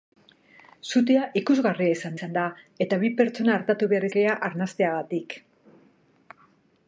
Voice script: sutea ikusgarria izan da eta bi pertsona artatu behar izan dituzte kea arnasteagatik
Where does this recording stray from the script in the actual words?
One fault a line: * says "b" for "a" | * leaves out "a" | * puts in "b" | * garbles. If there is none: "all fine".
* puts in "izan"
* leaves out "izan dituzte"